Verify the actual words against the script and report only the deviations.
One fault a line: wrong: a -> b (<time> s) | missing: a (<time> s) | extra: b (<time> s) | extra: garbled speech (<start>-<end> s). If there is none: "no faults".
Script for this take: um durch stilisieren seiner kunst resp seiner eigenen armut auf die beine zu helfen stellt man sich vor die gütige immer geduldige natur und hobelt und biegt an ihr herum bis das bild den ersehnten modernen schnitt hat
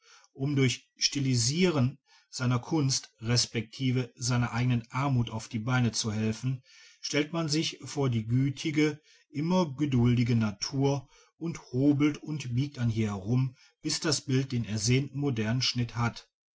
no faults